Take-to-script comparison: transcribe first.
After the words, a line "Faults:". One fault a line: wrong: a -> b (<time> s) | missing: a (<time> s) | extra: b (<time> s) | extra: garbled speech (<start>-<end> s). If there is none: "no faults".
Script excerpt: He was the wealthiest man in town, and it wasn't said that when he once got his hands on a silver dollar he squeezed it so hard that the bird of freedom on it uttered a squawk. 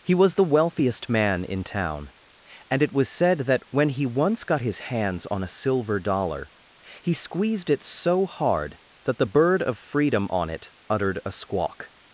He was the wealthiest man in town, and it was said that when he once got his hands on a silver dollar he squeezed it so hard that the bird of freedom on it uttered a squawk.
Faults:
wrong: wasn't -> was (2.9 s)